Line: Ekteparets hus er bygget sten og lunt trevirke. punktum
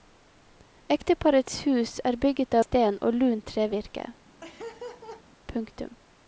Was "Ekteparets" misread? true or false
false